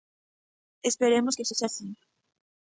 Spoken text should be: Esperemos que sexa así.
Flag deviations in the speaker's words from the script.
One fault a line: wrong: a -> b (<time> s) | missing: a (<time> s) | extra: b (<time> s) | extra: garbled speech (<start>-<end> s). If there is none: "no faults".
no faults